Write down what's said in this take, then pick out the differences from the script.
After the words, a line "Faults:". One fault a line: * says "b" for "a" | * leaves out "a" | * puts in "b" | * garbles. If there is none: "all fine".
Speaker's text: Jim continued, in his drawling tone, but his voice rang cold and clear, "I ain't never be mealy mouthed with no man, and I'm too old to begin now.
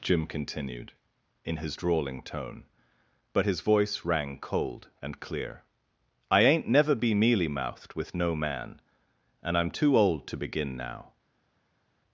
Jim continued, in his drawling tone, but his voice rang cold and clear, "I ain't never be mealy mouthed with no man, and I'm too old to begin now.
Faults:
all fine